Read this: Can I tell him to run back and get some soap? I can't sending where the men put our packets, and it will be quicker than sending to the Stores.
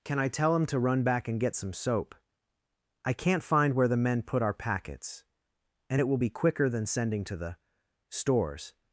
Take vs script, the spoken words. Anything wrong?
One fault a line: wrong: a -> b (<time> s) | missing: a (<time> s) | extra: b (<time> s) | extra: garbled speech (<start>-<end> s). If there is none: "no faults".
wrong: sending -> find (3.4 s)